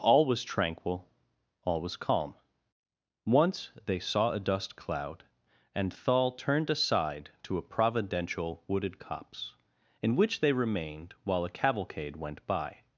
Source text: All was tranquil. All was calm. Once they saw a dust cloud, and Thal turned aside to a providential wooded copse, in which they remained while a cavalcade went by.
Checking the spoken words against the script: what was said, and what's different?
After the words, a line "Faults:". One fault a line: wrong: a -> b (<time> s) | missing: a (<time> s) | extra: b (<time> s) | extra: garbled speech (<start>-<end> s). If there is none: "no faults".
All was tranquil. All was calm. Once they saw a dust cloud, and Thal turned aside to a providential wooded copse, in which they remained while a cavalcade went by.
Faults:
no faults